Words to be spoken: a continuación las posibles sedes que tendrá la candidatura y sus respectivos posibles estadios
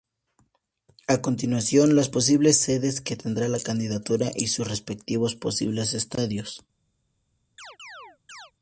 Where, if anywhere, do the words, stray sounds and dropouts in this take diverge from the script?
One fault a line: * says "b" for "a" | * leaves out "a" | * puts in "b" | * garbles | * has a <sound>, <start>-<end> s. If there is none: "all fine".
* has a chirp, 7.6-8.5 s